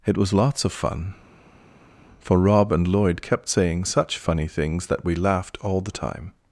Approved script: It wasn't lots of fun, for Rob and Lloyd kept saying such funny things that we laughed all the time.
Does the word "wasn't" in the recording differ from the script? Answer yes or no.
yes